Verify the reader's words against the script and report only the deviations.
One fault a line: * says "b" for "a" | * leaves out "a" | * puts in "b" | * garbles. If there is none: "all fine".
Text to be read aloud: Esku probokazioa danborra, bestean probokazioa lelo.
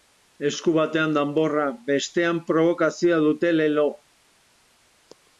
* says "batean" for "probokazioa"
* puts in "dute"